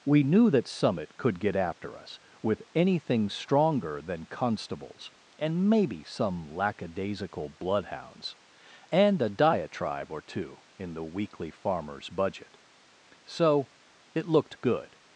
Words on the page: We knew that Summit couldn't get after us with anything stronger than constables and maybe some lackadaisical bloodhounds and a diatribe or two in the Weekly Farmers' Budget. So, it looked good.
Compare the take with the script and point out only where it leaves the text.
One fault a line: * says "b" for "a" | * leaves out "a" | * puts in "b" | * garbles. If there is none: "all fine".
* says "could" for "couldn't"